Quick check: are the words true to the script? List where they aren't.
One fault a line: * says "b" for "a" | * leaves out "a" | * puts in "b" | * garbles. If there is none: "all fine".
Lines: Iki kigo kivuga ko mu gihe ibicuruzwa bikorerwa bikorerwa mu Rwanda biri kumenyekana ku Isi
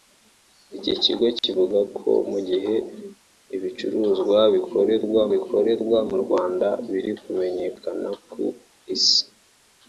all fine